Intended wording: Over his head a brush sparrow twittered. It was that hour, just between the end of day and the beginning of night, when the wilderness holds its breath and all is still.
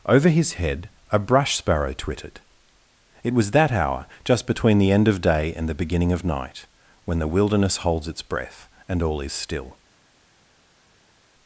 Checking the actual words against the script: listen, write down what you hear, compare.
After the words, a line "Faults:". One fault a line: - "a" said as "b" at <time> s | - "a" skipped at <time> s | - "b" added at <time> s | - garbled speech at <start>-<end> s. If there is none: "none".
Over his head a brush sparrow twittered. It was that hour, just between the end of day and the beginning of night, when the wilderness holds its breath and all is still.
Faults:
none